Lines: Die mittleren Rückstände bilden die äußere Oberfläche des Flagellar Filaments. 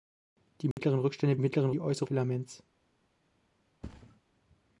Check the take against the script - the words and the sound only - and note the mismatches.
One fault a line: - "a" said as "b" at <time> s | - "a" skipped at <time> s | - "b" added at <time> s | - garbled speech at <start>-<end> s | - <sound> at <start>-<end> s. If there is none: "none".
- dropout at 0.7-0.8 s
- "bilden" said as "mittleren" at 1.4 s
- "Oberfläche des Flagellar" skipped at 2.1 s
- thud at 3.8-4.2 s